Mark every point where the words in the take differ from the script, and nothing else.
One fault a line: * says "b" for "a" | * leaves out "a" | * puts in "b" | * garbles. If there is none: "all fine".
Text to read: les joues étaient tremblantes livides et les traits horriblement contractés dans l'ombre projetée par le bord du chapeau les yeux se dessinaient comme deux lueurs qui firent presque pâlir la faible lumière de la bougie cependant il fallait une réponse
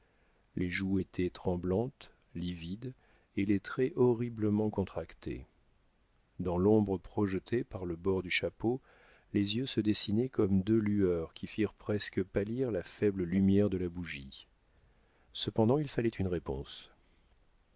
all fine